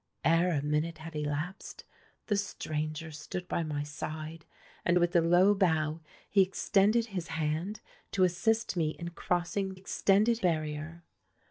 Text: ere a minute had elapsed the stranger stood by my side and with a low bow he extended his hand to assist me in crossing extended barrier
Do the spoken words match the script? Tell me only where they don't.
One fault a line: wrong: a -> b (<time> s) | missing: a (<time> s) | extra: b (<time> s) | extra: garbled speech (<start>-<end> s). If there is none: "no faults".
no faults